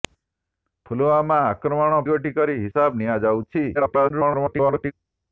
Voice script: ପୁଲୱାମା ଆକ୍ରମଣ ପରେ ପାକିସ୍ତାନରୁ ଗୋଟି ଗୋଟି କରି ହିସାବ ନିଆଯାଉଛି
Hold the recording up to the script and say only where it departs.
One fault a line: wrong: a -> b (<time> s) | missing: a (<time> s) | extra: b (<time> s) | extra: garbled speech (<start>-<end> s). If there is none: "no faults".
missing: ପରେ ପାକିସ୍ତାନରୁ ଗୋଟି (2.0 s)
extra: garbled speech (3.7-4.9 s)